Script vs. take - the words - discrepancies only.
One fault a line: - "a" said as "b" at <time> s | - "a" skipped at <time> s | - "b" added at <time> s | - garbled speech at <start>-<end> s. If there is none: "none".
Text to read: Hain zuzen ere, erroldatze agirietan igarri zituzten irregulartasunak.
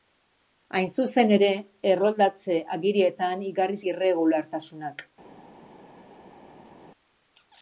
- "zituzten" skipped at 3.8 s